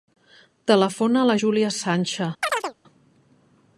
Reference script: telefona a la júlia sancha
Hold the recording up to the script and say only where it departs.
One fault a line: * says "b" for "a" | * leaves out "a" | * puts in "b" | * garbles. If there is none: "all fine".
all fine